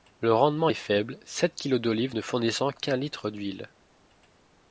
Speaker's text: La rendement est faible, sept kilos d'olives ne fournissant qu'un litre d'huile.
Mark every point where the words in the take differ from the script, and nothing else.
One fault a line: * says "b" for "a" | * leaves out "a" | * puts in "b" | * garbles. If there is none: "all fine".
* says "Le" for "La"